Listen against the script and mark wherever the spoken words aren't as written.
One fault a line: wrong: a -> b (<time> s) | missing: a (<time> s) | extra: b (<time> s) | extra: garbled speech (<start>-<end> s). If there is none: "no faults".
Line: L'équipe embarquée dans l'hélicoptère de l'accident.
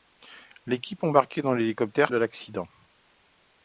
no faults